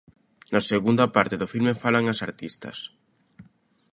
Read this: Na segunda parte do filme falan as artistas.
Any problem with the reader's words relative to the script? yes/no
no